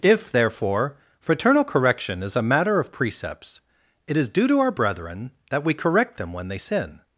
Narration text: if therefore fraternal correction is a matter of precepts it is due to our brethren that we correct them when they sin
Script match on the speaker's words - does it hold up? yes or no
yes